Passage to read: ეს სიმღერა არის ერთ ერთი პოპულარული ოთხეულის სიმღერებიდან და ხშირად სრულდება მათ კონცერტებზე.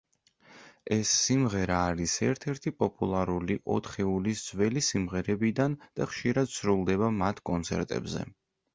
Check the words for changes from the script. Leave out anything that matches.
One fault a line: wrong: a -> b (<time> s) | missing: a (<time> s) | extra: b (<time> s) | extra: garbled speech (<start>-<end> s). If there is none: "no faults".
extra: ძველი (4.5 s)